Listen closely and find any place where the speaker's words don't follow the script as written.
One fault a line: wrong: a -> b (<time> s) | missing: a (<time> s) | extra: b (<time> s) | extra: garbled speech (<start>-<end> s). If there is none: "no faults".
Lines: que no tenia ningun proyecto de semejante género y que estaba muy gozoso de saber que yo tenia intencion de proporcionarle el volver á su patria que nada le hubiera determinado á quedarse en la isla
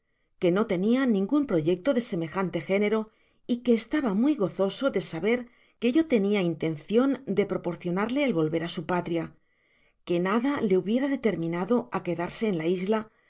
no faults